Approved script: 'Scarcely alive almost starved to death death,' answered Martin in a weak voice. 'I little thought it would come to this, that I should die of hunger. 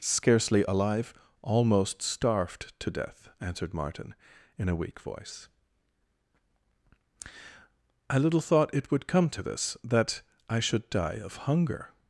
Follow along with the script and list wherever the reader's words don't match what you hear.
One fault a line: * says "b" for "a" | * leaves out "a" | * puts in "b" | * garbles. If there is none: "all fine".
* leaves out "death"